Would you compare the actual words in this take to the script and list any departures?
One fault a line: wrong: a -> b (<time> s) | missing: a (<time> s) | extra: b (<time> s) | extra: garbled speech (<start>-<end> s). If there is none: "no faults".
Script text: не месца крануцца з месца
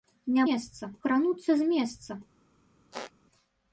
no faults